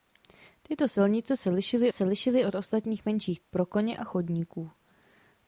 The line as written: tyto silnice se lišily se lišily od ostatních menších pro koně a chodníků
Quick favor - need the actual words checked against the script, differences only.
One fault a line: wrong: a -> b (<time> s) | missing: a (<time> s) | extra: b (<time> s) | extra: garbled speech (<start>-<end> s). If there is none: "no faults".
no faults